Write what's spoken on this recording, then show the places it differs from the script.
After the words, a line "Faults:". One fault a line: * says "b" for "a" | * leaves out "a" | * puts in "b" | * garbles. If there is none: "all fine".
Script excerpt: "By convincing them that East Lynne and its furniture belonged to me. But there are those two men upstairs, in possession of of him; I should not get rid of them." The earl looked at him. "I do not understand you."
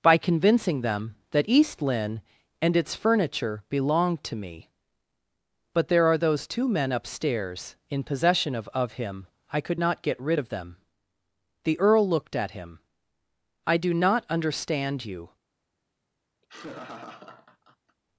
"By convincing them that East Lynne and its furniture belonged to me. But there are those two men upstairs, in possession of of him; I could not get rid of them." The earl looked at him. "I do not understand you."
Faults:
* says "could" for "should"